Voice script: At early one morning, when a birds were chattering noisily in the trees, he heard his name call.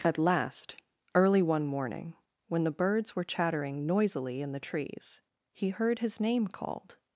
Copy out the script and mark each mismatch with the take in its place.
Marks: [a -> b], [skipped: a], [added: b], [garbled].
At [added: last] early one morning, when [a -> the] birds were chattering noisily in the trees, he heard his name [call. -> called]